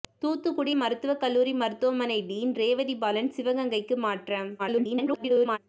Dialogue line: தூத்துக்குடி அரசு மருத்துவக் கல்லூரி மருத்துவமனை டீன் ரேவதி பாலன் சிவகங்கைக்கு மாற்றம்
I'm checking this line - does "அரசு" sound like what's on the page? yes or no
no